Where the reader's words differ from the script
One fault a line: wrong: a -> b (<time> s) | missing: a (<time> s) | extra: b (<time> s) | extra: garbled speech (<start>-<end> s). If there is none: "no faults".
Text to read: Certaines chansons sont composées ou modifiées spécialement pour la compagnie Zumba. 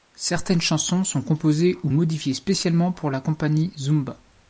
no faults